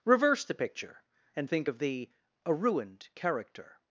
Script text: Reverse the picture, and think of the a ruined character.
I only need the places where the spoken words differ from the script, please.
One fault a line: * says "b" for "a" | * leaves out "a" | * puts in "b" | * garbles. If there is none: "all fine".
all fine